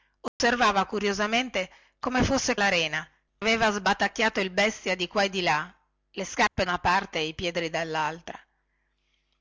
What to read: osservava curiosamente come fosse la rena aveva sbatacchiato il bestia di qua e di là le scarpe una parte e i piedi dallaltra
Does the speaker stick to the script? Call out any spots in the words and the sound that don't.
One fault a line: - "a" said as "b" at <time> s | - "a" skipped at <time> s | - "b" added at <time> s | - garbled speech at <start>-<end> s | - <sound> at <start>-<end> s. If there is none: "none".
- dropout at 0.3-0.4 s
- dropout at 6.5-6.6 s